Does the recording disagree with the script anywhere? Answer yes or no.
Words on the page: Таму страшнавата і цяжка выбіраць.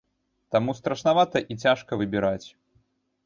no